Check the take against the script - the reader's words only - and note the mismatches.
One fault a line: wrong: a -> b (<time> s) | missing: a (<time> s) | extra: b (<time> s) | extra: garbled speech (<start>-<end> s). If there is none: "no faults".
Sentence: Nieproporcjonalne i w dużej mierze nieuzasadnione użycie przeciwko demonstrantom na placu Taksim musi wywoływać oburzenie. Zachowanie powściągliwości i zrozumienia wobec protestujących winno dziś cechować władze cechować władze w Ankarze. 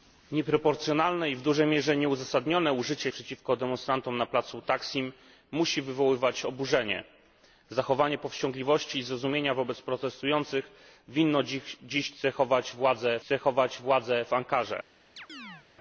no faults